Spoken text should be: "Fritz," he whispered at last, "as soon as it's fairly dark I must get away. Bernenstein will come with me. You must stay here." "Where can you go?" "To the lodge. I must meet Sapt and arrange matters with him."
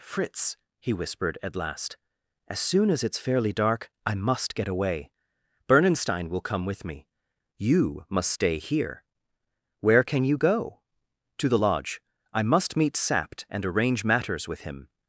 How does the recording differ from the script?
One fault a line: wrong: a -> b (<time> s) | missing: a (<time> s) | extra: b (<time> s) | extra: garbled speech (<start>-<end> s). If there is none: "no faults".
no faults